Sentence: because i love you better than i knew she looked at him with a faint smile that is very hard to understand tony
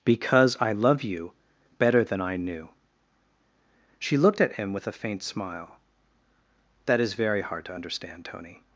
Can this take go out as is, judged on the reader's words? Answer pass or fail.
pass